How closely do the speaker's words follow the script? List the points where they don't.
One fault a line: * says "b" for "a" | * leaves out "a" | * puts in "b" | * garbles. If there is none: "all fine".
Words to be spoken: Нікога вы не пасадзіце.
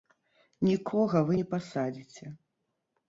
all fine